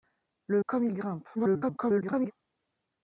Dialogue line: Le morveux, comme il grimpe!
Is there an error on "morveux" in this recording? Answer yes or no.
yes